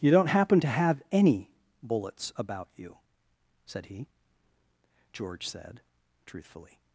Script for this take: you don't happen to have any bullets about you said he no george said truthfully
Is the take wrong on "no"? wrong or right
wrong